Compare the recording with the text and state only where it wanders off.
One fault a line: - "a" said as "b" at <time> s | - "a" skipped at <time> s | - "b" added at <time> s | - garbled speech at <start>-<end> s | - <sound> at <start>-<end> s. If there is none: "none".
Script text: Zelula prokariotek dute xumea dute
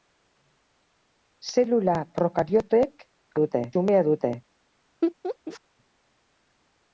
- laugh at 5.0-5.6 s